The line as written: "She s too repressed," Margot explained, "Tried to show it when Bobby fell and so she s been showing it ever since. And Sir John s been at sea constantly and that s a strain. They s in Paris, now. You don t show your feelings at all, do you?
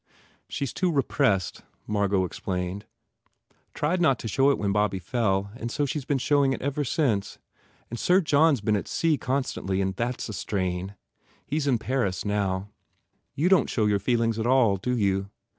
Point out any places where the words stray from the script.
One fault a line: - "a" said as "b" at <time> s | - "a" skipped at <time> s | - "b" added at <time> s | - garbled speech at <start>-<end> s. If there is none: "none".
- "not" added at 4.0 s
- "They" said as "He" at 11.4 s